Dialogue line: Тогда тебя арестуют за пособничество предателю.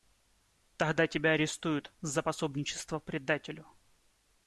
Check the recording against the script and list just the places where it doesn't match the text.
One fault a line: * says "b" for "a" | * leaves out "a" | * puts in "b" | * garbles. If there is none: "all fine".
all fine